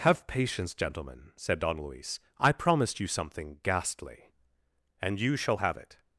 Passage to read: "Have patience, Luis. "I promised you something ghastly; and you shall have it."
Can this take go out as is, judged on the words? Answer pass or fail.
fail